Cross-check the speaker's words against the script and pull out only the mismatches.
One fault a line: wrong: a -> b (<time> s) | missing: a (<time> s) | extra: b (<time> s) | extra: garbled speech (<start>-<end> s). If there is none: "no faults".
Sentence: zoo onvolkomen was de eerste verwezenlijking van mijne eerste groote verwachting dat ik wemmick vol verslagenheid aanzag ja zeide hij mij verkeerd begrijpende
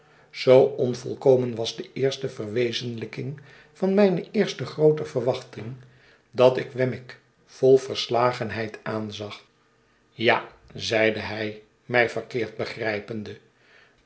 no faults